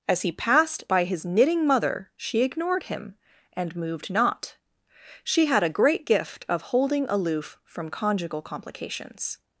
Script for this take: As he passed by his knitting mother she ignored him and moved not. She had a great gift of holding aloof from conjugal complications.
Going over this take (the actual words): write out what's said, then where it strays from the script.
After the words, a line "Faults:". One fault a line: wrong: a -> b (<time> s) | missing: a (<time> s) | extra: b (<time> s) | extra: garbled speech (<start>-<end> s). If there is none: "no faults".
As he passed by his knitting mother she ignored him and moved not. She had a great gift of holding aloof from conjugal complications.
Faults:
no faults